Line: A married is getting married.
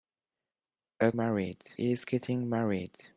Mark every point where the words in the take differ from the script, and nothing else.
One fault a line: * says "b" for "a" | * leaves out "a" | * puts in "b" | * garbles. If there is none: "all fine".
all fine